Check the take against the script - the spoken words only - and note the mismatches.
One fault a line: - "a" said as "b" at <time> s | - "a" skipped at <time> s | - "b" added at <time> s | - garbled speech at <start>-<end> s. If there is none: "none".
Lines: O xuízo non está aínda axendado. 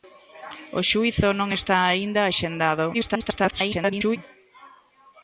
- garbled speech at 2.9-4.2 s